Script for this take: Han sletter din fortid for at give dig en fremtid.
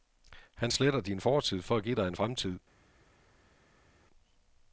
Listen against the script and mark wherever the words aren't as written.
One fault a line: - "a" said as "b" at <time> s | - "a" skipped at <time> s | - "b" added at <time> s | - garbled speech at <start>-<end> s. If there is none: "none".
none